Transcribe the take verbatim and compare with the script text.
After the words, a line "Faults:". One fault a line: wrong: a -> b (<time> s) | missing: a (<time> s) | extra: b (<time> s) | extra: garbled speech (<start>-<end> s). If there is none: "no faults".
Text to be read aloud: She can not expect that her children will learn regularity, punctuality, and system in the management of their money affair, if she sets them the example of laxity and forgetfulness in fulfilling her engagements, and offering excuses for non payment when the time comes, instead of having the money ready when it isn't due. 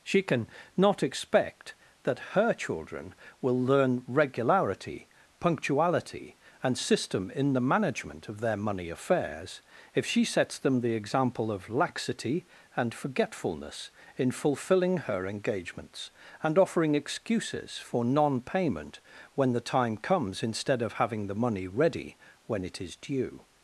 She can not expect that her children will learn regularity, punctuality, and system in the management of their money affairs, if she sets them the example of laxity and forgetfulness in fulfilling her engagements, and offering excuses for non payment when the time comes, instead of having the money ready when it is due.
Faults:
wrong: affair -> affairs (8.9 s)
wrong: isn't -> is (22.8 s)